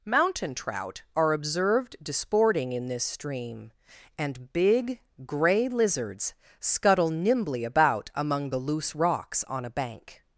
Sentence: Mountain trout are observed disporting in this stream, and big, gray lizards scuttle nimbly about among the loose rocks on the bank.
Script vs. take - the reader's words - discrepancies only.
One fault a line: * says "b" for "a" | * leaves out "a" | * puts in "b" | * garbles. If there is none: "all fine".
* says "a" for "the"